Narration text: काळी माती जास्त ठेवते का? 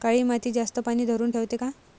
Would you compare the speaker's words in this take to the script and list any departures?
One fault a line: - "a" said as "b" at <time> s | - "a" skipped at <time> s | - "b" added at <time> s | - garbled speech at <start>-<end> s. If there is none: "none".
- "पानी धरुन" added at 0.8 s